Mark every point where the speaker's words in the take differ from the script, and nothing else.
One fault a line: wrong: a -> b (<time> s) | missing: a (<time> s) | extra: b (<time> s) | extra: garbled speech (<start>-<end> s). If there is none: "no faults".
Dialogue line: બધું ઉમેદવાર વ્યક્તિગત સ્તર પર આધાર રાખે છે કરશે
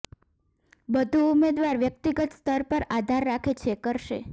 no faults